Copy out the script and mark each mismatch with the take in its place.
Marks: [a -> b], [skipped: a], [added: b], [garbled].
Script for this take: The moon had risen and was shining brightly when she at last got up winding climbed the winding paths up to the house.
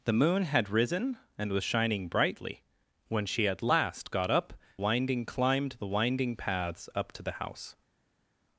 The moon had risen and was shining brightly when she at last got up winding climbed the winding paths up to the house.